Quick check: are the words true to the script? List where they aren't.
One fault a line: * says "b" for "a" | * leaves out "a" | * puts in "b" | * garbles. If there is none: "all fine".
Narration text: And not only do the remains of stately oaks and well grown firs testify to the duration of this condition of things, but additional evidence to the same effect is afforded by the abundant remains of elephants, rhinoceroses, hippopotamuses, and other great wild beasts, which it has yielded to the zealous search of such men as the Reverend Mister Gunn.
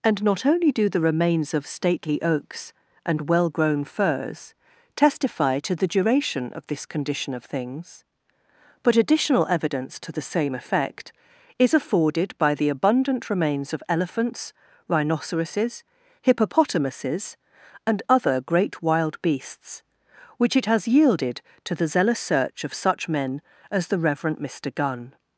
all fine